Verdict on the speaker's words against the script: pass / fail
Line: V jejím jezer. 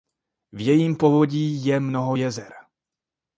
fail